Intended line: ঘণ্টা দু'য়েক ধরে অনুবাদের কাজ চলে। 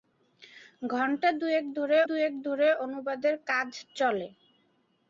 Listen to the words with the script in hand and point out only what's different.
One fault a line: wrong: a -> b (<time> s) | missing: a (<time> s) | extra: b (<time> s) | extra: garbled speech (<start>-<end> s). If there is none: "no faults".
extra: দু'য়েক ধরে (2.1 s)